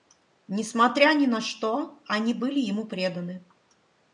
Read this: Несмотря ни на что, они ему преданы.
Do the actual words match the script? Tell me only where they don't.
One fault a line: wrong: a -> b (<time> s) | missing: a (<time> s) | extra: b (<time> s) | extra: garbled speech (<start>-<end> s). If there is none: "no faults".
extra: были (2.3 s)